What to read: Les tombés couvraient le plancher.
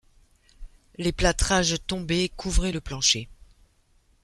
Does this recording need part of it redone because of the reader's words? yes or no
yes